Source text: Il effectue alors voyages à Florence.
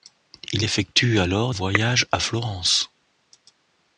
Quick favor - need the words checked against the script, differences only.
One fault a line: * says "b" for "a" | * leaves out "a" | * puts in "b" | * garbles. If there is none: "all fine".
all fine